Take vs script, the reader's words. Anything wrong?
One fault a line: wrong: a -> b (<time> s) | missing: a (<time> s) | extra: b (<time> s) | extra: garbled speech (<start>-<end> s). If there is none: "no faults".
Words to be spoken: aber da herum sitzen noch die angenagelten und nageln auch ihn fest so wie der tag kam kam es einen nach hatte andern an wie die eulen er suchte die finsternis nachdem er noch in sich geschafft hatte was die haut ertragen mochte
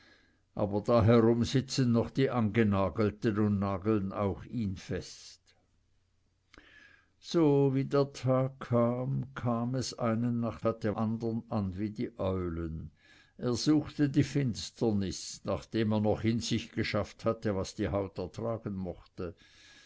no faults